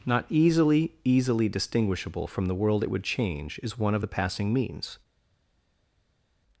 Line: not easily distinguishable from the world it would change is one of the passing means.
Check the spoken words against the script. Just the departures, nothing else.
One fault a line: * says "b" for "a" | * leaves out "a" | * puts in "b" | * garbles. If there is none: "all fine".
* puts in "easily"